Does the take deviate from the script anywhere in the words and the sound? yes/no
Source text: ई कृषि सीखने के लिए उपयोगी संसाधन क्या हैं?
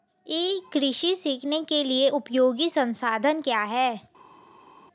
no